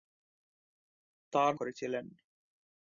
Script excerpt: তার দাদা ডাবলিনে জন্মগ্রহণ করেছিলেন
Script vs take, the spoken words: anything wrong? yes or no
yes